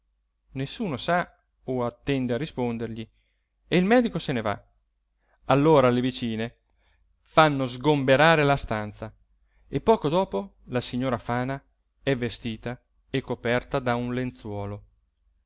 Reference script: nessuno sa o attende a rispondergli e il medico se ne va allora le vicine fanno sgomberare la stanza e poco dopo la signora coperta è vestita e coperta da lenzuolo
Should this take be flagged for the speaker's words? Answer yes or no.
yes